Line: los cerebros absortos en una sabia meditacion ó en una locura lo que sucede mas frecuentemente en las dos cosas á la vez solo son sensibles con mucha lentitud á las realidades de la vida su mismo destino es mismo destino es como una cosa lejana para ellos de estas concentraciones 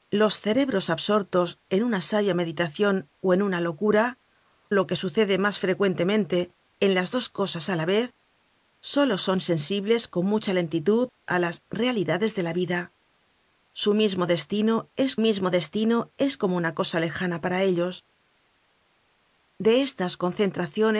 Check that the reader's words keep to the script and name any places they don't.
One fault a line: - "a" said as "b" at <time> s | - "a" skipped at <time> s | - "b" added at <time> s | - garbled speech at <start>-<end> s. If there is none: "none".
none